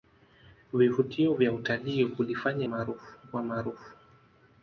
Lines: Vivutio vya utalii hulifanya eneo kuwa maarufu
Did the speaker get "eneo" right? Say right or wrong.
wrong